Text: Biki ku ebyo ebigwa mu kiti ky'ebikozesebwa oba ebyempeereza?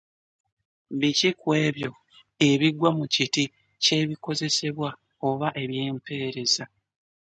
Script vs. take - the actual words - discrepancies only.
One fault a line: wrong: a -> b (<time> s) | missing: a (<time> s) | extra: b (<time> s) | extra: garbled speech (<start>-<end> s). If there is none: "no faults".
no faults